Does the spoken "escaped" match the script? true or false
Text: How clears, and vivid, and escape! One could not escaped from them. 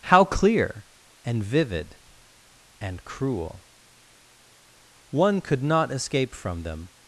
false